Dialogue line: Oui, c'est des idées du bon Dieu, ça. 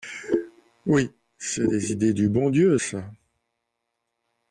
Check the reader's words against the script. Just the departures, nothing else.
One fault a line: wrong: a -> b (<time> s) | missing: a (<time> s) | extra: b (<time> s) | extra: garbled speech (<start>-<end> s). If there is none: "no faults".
no faults